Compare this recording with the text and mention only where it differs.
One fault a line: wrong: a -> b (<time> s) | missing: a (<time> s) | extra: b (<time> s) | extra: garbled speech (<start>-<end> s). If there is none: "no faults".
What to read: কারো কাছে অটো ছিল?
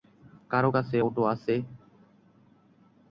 wrong: ছিল -> আছে (1.3 s)